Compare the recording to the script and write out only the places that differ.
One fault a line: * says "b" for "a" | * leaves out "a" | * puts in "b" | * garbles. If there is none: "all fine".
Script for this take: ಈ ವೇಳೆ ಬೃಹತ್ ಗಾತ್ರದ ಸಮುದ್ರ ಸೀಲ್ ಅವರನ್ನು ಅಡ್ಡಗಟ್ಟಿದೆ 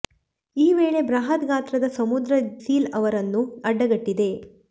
all fine